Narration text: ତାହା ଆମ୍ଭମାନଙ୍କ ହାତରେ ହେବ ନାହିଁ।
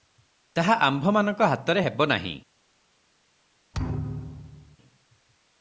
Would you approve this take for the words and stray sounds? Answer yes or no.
no